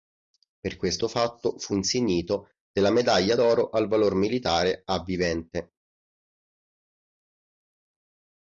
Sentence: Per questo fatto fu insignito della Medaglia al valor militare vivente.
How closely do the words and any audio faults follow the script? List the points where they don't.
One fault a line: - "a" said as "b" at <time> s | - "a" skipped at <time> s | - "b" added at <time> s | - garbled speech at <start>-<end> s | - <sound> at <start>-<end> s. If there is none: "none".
- "d'oro" added at 3.3 s
- "a" added at 4.8 s